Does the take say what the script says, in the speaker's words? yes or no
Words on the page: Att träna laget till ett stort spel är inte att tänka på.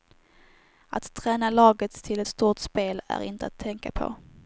yes